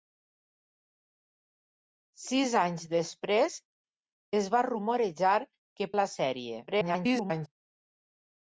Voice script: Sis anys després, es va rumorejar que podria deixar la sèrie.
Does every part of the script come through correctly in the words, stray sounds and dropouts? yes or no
no